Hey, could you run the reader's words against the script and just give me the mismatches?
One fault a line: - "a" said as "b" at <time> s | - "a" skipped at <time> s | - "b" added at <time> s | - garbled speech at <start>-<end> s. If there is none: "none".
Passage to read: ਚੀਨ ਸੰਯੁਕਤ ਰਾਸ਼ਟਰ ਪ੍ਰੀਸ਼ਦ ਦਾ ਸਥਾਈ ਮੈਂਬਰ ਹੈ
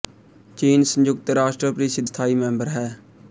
- "ਦਾ" skipped at 2.0 s